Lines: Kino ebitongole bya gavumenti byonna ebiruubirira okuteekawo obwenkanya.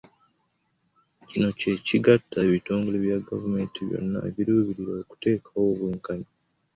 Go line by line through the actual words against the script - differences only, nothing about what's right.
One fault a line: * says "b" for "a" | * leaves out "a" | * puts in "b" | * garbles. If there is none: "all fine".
* puts in "kye kigatta"